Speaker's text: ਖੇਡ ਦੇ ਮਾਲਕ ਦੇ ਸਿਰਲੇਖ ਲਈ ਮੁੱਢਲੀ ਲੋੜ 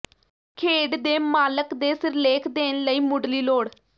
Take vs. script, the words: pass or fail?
fail